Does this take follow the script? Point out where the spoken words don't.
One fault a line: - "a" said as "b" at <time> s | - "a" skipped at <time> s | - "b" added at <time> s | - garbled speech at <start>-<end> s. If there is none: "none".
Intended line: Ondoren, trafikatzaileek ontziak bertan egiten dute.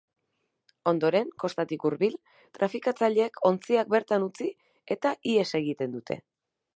- "kostatik hurbil" added at 1.4 s
- "utzi eta ihes" added at 4.3 s